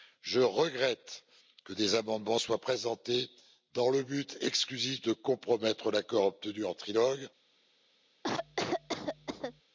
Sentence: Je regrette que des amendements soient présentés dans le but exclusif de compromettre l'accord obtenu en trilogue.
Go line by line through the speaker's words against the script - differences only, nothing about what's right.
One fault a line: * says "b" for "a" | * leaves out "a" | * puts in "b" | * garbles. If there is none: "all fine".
all fine